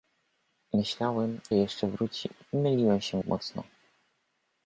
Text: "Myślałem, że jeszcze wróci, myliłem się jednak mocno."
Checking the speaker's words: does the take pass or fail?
fail